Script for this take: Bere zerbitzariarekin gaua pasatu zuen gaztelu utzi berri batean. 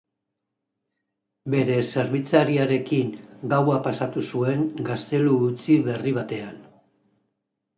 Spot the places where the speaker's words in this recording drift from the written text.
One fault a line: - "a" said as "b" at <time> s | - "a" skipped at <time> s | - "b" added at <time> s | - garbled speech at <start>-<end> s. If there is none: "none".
none